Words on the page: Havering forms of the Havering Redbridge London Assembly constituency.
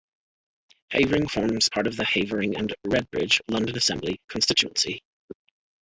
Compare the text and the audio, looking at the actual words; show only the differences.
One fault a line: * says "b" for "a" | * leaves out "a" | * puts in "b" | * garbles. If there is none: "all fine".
* puts in "part"
* puts in "and"